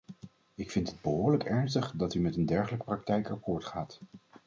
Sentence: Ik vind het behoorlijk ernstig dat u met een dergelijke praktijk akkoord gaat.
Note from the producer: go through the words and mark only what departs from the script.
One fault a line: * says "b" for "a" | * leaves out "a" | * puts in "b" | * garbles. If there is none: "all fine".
all fine